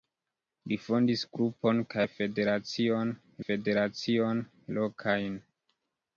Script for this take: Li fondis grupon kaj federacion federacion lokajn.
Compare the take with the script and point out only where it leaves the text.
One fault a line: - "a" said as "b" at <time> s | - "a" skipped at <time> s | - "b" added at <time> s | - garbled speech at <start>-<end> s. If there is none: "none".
none